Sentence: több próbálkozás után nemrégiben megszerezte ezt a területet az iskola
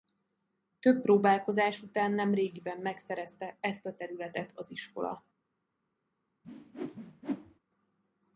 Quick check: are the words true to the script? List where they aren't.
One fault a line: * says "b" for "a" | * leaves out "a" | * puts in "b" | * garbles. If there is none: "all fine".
all fine